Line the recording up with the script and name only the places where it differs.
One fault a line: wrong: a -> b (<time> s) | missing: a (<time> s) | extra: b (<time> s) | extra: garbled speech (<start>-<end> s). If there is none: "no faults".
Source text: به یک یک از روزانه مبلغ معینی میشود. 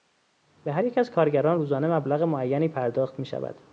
wrong: یک -> هر (0.7 s)
extra: کارگران (1.1 s)
extra: پرداخت (2.7 s)